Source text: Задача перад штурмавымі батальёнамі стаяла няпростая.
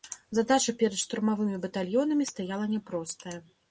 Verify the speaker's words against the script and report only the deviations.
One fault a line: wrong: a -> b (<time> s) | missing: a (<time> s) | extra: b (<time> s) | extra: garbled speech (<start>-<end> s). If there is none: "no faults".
no faults